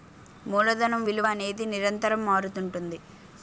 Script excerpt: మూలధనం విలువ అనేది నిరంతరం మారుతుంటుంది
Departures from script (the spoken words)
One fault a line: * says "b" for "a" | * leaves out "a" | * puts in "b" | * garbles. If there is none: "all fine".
all fine